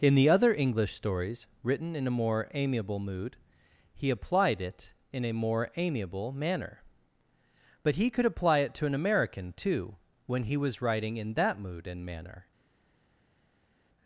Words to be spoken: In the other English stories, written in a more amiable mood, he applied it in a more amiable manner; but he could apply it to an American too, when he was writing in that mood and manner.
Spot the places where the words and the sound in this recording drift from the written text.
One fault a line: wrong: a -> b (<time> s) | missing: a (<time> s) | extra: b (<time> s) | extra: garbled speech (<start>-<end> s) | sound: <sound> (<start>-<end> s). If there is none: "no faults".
no faults